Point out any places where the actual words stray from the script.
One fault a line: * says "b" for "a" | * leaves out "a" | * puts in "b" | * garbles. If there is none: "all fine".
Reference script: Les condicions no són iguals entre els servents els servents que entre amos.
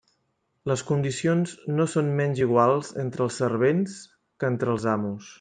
* puts in "menys"
* leaves out "els servents"
* puts in "els"